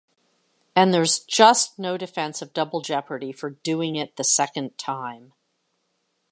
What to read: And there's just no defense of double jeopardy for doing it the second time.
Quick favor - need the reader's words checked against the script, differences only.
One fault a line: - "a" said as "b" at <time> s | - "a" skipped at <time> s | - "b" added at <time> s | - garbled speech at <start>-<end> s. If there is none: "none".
none